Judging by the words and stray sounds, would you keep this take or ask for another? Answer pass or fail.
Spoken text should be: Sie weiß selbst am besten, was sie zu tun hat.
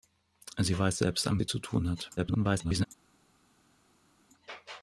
fail